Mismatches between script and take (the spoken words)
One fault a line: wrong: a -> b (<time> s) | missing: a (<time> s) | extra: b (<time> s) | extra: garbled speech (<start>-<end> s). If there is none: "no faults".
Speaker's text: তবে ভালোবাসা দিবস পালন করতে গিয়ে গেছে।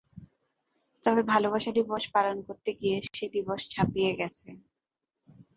extra: সে দিবস ছাপিয়ে (3.1 s)